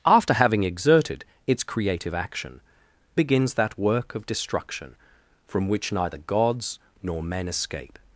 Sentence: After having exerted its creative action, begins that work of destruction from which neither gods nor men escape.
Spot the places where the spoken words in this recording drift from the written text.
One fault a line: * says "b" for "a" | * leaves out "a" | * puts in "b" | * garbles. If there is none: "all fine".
all fine